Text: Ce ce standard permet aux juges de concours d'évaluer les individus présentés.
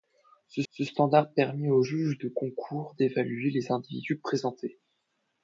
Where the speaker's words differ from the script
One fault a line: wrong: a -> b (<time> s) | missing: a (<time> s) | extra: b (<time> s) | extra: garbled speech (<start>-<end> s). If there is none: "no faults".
no faults